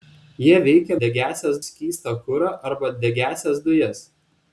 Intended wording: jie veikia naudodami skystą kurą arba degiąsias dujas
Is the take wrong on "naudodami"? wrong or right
wrong